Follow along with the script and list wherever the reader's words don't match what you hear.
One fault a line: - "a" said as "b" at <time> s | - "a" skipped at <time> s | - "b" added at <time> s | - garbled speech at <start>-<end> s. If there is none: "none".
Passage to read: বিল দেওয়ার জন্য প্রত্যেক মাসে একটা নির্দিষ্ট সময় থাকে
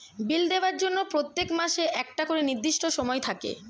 - "করে" added at 2.2 s